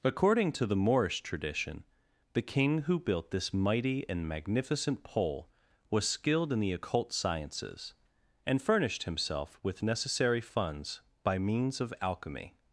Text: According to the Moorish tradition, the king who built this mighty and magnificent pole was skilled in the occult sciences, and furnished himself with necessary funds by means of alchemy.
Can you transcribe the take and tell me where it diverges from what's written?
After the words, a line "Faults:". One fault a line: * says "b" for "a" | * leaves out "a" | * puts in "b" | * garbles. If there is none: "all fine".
According to the Moorish tradition, the king who built this mighty and magnificent pole was skilled in the occult sciences, and furnished himself with necessary funds by means of alchemy.
Faults:
all fine